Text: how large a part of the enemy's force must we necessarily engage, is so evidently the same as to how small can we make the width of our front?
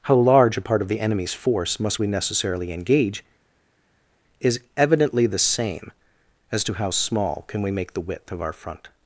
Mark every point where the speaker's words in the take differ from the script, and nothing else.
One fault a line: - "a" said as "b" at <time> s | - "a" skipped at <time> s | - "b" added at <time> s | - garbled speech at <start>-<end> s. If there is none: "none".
- "so" skipped at 4.6 s